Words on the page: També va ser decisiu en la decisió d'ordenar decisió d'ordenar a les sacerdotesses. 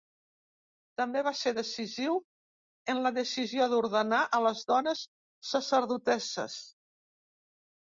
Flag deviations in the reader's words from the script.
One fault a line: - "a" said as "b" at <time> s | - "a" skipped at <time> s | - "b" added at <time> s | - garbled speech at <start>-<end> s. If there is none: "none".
- "decisió d'ordenar" skipped at 4.2 s
- "dones" added at 4.7 s